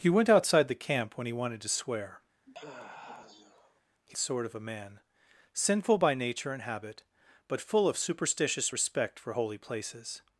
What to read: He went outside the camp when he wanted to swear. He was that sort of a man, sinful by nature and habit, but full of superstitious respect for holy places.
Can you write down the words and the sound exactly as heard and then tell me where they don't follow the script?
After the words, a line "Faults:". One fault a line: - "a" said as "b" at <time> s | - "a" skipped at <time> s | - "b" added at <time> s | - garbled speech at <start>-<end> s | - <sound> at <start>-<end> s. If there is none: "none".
He went outside the camp when he wanted to swear. He sort of a man, sinful by nature and habit, but full of superstitious respect for holy places.
Faults:
- sigh at 2.5-3.8 s
- "was that" skipped at 4.2 s